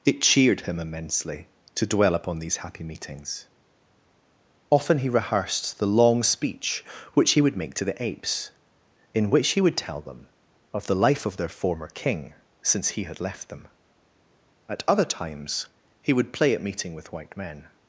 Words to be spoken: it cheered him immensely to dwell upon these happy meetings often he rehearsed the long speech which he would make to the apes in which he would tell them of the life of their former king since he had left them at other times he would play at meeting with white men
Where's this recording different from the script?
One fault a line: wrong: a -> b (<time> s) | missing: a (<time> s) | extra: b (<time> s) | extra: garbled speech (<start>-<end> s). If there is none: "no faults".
no faults